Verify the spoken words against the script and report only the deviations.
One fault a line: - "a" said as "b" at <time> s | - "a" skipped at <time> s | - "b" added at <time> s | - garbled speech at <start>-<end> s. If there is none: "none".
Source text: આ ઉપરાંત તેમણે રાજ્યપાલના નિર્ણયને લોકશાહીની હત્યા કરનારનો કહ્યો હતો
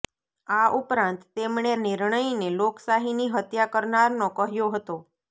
- "રાજ્યપાલના" skipped at 1.7 s